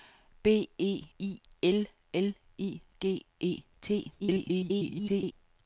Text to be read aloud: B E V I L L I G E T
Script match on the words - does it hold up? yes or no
no